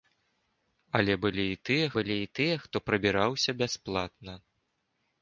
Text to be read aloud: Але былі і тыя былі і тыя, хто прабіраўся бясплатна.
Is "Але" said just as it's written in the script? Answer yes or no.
yes